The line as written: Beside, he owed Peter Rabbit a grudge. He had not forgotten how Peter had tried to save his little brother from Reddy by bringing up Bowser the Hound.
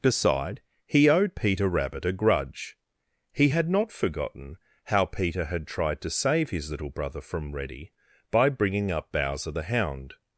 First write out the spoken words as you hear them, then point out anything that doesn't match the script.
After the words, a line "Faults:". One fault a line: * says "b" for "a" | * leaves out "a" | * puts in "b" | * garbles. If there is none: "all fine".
Beside, he owed Peter Rabbit a grudge. He had not forgotten how Peter had tried to save his little brother from Reddy by bringing up Bowser the Hound.
Faults:
all fine